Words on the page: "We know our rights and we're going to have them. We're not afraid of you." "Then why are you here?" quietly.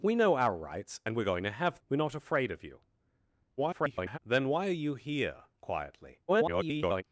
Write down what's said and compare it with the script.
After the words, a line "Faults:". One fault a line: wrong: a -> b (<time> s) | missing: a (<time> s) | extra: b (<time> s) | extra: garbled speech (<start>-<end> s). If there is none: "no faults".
"We know our rights and we're going to have. We're not afraid of you." [garbled] "Then why are you here?" quietly. [garbled]
Faults:
missing: them (1.8 s)
extra: garbled speech (3.6-4.2 s)
extra: garbled speech (6.3-7.0 s)